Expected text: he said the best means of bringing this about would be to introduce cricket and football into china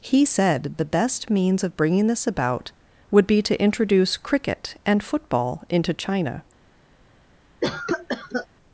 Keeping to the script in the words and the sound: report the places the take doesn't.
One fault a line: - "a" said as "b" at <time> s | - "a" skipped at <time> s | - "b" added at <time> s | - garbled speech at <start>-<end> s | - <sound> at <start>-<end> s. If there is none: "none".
- cough at 7.6-8.5 s